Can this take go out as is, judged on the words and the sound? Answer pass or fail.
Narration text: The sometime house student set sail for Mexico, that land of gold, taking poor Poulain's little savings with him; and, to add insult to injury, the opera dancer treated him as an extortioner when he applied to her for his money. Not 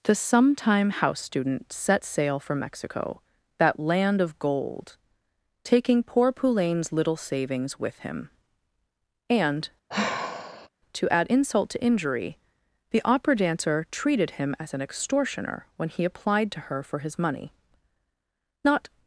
fail